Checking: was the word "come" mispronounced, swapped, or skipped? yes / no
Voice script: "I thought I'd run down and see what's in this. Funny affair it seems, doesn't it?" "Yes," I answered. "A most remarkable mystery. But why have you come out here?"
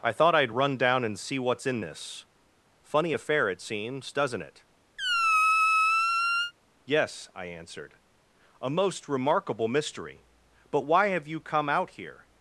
no